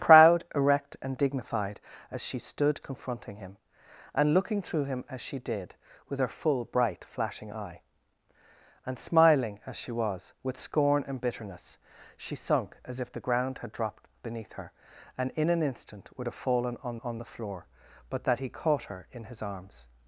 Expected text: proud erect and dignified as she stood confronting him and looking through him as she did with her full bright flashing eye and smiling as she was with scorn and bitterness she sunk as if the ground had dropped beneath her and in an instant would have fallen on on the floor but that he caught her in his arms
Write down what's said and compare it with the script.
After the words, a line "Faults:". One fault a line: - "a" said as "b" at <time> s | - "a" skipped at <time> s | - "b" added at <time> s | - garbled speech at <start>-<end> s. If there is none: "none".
proud erect and dignified as she stood confronting him and looking through him as she did with her full bright flashing eye and smiling as she was with scorn and bitterness she sunk as if the ground had dropped beneath her and in an instant would have fallen on on the floor but that he caught her in his arms
Faults:
none